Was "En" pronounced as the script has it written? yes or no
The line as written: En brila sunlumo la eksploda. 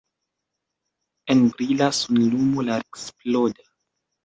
yes